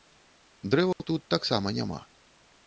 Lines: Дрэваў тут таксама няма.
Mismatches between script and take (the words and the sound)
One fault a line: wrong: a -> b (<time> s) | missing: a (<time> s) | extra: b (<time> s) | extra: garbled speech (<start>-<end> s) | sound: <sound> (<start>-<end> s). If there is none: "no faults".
sound: dropout (0.9-1.0 s)